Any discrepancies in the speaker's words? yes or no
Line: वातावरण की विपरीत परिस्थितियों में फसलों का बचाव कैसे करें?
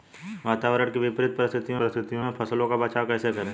yes